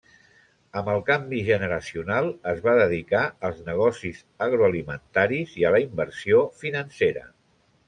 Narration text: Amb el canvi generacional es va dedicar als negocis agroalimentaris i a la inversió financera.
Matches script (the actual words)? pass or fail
pass